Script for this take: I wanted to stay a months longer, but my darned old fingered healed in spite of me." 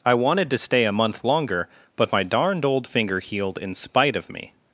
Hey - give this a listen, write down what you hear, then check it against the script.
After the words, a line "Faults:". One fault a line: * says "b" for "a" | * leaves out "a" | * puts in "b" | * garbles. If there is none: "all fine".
I wanted to stay a month longer, but my darned old finger healed in spite of me."
Faults:
* says "month" for "months"
* says "finger" for "fingered"